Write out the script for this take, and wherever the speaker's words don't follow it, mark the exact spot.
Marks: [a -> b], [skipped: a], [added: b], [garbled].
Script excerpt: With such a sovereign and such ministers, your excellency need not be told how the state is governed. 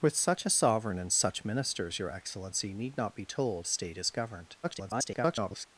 With such a sovereign and such ministers, your excellency need not be told [skipped: how the] state is governed. [garbled]